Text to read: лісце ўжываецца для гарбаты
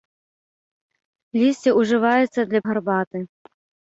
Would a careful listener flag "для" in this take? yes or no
no